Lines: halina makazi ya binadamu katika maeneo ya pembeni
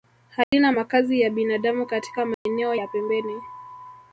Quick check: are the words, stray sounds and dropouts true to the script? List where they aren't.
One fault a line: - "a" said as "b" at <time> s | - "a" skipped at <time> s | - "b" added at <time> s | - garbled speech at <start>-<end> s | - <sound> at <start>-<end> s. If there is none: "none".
- dropout at 0.4-0.5 s
- dropout at 2.3-2.5 s